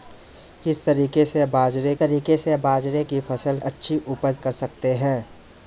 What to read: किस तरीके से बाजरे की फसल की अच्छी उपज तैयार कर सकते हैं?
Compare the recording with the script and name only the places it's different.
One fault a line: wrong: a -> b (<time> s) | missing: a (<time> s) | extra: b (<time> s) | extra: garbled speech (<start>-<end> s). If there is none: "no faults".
extra: तरीके से बाजरे (2.0 s)
missing: की (3.6 s)
missing: तैयार (4.4 s)